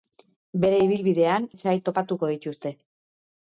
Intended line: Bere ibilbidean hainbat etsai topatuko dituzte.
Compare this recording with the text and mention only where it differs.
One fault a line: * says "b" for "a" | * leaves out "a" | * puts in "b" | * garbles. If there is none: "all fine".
* leaves out "hainbat"